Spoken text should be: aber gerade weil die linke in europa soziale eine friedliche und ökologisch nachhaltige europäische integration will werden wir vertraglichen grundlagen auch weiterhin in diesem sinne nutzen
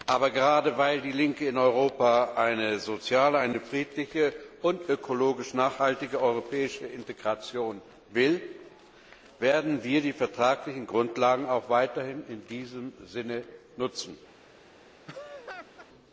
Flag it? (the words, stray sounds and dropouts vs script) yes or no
yes